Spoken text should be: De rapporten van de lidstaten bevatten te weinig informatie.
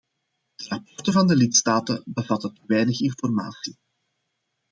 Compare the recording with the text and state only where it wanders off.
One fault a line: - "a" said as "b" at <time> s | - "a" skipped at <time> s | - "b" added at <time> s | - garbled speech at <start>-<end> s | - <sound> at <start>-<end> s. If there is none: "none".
none